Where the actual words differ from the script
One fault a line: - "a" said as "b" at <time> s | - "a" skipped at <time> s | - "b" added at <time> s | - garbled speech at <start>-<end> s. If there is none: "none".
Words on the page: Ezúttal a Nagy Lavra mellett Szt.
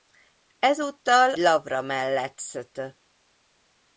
- "a Nagy" skipped at 1.3 s